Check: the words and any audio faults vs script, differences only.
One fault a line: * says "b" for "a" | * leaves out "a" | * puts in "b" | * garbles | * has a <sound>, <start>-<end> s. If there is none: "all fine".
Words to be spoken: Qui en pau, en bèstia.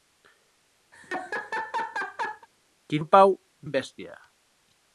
* has a laugh, 0.9-2.5 s